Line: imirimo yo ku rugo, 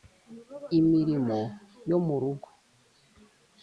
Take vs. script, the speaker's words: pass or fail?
fail